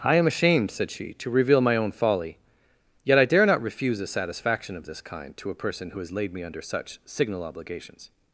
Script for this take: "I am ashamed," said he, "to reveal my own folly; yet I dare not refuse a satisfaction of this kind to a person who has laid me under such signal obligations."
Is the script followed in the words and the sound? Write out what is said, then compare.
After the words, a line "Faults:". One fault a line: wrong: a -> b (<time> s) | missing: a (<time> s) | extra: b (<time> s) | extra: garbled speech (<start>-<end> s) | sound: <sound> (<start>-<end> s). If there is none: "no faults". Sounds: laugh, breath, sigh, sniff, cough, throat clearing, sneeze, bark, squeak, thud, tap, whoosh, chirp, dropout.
"I am ashamed," said she, "to reveal my own folly; yet I dare not refuse a satisfaction of this kind to a person who has laid me under such signal obligations."
Faults:
wrong: he -> she (0.9 s)